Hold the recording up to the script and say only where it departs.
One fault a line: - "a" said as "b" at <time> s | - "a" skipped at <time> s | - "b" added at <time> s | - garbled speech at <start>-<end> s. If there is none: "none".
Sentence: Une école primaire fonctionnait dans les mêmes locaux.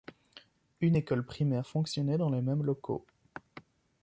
none